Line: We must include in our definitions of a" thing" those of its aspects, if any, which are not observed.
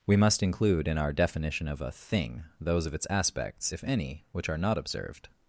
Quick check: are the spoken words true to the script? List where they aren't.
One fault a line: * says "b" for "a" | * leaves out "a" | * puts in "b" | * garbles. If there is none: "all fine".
* says "definition" for "definitions"